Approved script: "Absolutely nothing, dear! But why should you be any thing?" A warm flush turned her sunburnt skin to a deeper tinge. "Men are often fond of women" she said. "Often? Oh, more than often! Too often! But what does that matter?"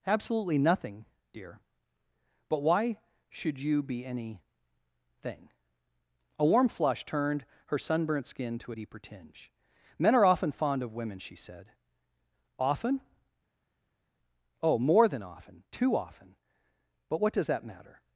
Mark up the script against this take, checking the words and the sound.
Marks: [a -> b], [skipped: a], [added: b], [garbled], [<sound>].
"Absolutely nothing, dear! But why should you be any thing?" A warm flush turned her sunburnt skin to a deeper tinge. "Men are often fond of women" she said. "Often? Oh, more than often! Too often! But what does that matter?"